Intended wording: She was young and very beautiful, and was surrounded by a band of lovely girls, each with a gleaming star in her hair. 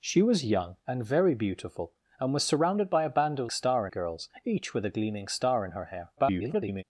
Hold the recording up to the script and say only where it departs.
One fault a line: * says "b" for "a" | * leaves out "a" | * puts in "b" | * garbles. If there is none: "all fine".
* says "star" for "lovely"
* garbles